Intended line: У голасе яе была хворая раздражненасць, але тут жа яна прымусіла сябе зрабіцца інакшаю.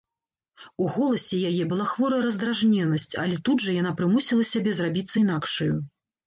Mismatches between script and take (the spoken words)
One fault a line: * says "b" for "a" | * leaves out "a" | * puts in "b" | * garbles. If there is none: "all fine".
all fine